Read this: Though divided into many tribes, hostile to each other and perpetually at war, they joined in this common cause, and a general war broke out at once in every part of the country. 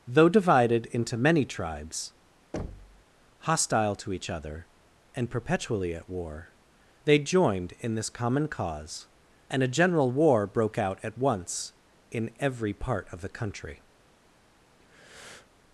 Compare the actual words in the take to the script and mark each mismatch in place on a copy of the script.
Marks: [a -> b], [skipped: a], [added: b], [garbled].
Though divided into many tribes, hostile to each other and perpetually at war, they joined in this common cause, and a general war broke out at once in every part of the country.